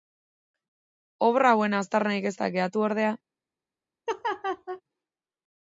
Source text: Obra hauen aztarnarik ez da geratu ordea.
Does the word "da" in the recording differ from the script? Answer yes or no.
no